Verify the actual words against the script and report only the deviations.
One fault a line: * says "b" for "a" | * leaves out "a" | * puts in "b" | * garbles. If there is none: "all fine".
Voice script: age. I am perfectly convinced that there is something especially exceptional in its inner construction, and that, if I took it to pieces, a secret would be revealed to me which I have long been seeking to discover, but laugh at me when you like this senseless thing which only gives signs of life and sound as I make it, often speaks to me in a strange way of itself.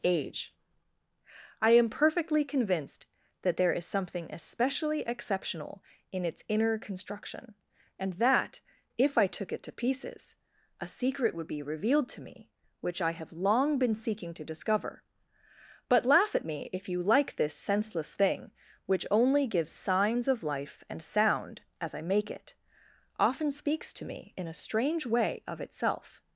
* says "if" for "when"